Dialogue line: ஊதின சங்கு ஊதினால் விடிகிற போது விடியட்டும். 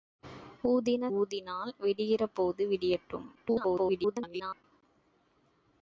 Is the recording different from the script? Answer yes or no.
yes